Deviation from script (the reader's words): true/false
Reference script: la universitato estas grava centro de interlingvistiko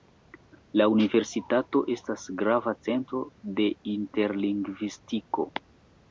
false